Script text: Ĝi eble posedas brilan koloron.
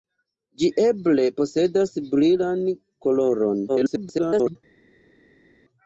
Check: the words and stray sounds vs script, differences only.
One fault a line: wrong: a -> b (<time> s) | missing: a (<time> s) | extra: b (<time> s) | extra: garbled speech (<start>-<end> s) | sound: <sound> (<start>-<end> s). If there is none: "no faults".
extra: garbled speech (3.7-4.6 s)